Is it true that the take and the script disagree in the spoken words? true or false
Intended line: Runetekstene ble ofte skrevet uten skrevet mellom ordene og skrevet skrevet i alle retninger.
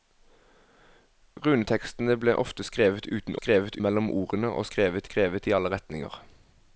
false